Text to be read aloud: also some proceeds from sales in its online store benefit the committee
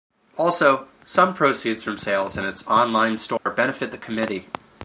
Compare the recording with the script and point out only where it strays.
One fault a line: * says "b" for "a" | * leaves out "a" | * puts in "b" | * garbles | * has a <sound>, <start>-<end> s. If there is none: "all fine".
* has a dropout, 3.4-3.5 s